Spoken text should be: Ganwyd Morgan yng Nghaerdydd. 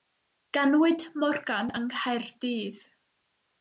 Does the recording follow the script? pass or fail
pass